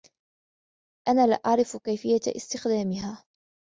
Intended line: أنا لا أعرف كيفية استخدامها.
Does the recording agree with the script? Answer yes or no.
yes